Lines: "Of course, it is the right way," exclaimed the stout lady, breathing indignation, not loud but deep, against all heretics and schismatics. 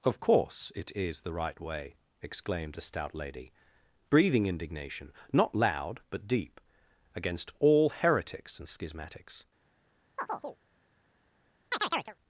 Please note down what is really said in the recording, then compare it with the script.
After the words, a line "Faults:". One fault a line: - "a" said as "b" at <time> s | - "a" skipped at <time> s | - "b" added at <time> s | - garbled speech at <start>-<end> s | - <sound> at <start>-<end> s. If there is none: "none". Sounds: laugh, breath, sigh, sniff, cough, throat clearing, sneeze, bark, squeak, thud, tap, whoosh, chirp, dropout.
"Of course, it is the right way," exclaimed a stout lady, breathing indignation, not loud but deep, against all heretics and schismatics.
Faults:
- "the" said as "a" at 2.8 s
- chirp at 10.2-10.6 s
- chirp at 11.7-12.2 s